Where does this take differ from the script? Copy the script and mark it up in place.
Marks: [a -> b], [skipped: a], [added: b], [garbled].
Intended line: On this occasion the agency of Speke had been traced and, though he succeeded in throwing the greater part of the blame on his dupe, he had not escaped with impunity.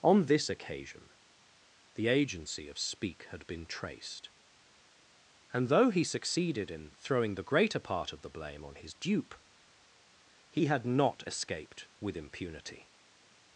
On this occasion the agency of Speke had been traced and, though he succeeded in throwing the greater part of the blame on his dupe, he had not escaped with impunity.